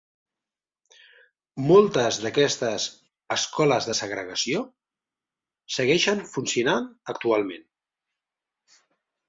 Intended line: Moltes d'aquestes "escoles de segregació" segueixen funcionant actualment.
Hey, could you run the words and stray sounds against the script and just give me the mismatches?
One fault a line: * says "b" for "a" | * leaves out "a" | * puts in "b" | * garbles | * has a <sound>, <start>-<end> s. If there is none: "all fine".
all fine